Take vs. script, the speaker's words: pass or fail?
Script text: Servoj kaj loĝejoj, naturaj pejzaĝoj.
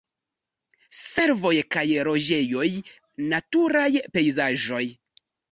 pass